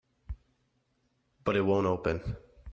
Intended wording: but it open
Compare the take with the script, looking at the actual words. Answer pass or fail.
fail